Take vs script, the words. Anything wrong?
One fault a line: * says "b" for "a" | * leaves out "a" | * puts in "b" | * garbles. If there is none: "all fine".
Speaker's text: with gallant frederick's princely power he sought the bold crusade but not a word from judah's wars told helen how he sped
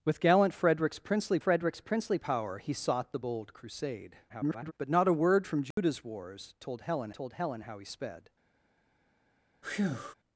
* puts in "frederick's princely"
* garbles
* puts in "told helen"